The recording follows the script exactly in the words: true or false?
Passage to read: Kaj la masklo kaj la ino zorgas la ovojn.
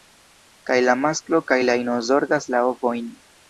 true